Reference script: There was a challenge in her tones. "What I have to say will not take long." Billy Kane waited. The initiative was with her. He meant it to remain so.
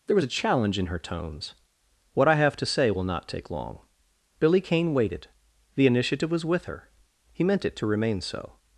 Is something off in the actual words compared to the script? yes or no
no